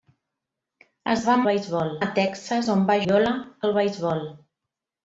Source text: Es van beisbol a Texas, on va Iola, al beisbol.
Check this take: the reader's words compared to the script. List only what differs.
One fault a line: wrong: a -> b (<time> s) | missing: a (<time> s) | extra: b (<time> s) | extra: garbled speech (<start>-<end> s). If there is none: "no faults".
no faults